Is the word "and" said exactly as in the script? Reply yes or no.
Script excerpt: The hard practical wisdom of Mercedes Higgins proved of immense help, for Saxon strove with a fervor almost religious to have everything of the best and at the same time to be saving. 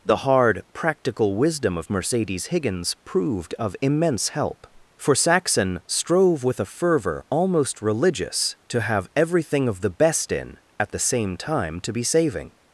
no